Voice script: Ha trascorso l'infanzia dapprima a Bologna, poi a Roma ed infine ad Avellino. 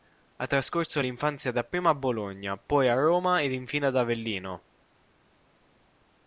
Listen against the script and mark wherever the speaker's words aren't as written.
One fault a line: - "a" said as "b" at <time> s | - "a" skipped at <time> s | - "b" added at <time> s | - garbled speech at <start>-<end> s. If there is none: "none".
none